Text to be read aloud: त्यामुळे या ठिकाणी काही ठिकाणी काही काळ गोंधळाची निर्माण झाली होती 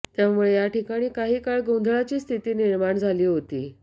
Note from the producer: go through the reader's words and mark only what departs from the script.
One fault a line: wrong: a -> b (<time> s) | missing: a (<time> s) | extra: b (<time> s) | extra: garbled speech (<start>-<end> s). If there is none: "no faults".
missing: ठिकाणी काही (1.4 s)
extra: स्थिती (2.2 s)